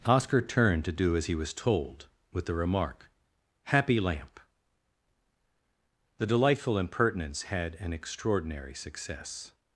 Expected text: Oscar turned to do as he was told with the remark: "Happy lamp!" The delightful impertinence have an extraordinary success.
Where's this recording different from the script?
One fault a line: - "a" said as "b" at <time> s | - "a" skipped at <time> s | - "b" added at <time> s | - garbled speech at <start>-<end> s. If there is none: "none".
- "have" said as "had" at 7.4 s